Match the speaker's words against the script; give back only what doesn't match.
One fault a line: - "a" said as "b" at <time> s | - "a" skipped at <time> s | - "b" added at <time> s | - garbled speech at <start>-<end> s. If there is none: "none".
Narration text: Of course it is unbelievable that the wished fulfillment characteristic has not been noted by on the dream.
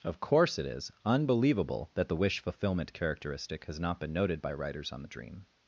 - "wished" said as "wish" at 2.1 s
- "writers" added at 4.5 s